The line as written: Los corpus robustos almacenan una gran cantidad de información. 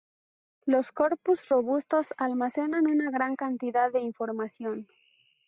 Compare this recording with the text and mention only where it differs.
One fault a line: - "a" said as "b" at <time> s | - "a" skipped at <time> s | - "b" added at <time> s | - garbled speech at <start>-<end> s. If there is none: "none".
none